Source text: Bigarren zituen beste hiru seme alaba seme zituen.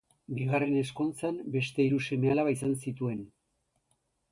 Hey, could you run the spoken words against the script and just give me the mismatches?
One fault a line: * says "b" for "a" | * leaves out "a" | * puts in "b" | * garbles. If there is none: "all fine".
* says "ezkontzan" for "zituen"
* says "izan" for "seme"